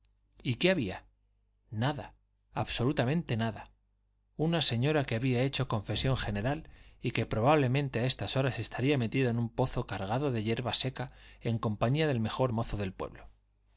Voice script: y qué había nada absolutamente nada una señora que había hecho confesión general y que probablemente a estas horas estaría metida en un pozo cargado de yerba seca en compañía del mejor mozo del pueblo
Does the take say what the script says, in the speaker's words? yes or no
yes